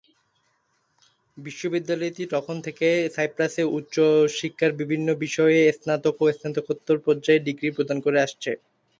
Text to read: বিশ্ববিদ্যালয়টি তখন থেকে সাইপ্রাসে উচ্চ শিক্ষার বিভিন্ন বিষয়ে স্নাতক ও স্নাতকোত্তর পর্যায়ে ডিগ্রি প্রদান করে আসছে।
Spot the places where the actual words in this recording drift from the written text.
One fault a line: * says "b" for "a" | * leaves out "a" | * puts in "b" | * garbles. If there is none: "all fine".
all fine